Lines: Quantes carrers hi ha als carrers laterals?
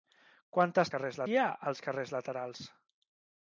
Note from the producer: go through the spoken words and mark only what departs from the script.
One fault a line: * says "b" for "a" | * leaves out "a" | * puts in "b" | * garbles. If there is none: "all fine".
all fine